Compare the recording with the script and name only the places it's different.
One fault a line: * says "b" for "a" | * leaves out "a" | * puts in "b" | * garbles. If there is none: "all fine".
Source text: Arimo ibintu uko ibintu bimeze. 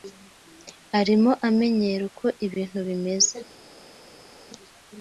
* says "amenyera" for "ibintu"